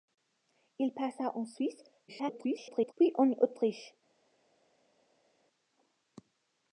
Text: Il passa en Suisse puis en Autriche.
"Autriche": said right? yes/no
yes